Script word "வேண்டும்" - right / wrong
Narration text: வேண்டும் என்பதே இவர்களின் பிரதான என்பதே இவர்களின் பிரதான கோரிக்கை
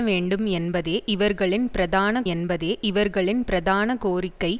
right